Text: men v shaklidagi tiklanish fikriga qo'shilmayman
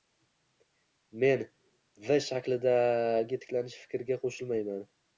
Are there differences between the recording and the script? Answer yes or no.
no